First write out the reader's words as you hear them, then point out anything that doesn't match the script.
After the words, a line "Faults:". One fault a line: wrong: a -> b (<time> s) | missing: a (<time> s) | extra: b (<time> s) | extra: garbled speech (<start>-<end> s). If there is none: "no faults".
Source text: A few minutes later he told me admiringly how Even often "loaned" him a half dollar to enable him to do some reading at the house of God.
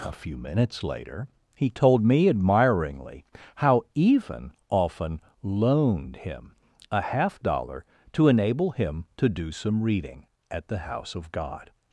A few minutes later he told me admiringly how Even often "loaned" him a half dollar to enable him to do some reading at the house of God.
Faults:
no faults